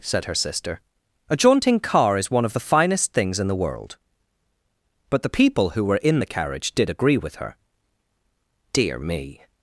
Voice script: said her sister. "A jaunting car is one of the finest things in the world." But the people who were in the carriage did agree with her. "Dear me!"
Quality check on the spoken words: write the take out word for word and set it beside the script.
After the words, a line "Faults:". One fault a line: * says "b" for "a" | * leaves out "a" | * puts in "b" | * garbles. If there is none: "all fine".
said her sister. "A jaunting car is one of the finest things in the world." But the people who were in the carriage did agree with her. "Dear me!"
Faults:
all fine